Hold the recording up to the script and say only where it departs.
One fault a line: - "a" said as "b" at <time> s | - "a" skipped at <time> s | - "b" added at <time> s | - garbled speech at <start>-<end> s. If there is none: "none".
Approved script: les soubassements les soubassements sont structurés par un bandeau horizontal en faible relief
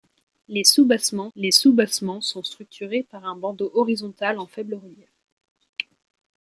none